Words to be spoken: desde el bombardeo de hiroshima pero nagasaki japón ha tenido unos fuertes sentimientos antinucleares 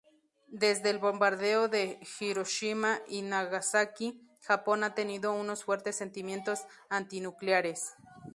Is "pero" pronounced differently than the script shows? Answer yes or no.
yes